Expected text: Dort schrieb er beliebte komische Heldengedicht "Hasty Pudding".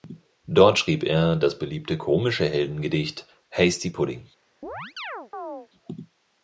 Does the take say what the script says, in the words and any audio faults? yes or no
no